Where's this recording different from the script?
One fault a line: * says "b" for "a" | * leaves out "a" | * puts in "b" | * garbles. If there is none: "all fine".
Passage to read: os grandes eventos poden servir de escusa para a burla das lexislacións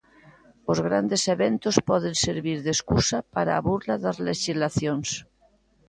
all fine